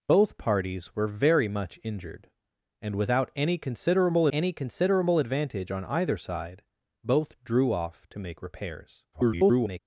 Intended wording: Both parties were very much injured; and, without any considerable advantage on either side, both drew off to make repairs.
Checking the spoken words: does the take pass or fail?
fail